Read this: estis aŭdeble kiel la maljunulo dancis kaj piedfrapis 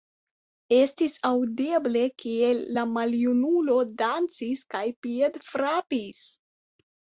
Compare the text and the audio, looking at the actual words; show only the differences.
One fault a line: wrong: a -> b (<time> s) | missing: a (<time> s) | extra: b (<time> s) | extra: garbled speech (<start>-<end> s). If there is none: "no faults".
no faults